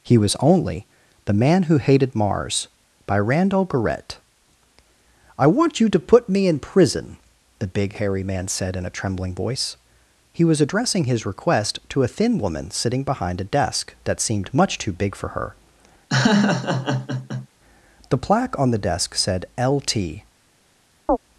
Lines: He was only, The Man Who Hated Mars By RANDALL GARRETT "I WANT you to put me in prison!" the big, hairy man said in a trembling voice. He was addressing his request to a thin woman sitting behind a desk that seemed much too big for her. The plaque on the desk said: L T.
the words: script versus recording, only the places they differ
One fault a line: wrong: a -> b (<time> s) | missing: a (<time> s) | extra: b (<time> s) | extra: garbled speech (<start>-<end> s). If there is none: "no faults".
no faults